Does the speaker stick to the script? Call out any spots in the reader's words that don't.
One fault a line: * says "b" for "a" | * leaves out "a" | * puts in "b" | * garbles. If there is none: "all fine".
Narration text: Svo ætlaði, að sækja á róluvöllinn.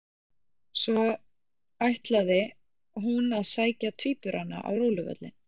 * puts in "hún"
* puts in "tvíburana"